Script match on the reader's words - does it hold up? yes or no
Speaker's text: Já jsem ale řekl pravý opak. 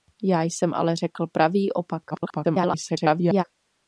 no